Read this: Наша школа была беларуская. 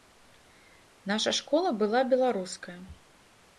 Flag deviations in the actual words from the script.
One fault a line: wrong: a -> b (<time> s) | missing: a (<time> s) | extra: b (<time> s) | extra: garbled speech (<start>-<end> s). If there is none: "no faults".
no faults